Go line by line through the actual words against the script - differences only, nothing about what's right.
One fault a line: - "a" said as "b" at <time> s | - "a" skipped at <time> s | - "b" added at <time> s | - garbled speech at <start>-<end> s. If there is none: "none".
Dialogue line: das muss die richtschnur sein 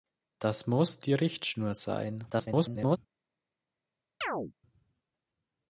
- garbled speech at 2.3-3.0 s